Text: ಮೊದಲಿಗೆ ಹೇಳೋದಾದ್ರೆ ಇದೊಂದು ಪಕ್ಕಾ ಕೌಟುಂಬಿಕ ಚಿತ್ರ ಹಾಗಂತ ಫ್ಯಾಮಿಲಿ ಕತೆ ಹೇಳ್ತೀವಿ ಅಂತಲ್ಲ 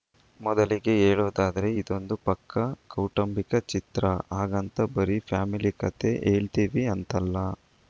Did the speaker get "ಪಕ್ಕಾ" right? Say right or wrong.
right